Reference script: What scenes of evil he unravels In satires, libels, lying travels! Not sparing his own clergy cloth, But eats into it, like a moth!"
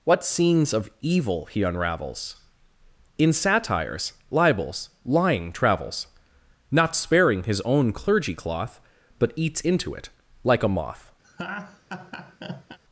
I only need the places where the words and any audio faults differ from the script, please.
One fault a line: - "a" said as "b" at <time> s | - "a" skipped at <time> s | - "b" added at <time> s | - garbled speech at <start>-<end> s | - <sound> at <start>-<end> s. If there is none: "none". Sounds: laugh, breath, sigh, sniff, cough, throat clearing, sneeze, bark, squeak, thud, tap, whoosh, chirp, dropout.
- laugh at 11.2-12.8 s